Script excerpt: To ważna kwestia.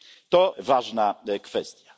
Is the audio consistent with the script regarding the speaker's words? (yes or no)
yes